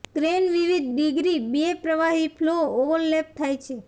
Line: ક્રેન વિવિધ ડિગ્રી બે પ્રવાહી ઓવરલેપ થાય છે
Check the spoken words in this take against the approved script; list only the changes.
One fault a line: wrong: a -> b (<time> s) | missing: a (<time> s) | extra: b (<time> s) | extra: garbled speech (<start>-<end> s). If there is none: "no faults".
extra: ફ્લો (2.4 s)